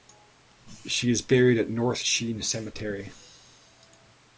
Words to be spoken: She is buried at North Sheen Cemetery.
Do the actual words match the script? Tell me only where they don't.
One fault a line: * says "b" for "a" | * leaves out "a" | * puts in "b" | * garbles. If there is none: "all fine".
all fine